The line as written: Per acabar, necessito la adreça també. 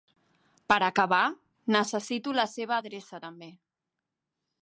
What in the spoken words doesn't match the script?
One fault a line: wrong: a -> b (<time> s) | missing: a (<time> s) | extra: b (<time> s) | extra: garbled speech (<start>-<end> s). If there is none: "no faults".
extra: seva (2.5 s)